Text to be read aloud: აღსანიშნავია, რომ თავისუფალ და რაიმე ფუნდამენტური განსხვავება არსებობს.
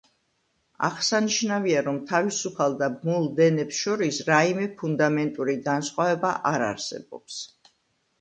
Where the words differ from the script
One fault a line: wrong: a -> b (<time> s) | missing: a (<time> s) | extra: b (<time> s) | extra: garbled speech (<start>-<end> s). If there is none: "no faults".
extra: ბმულ დენებს შორის (3.0 s)
extra: არ (6.5 s)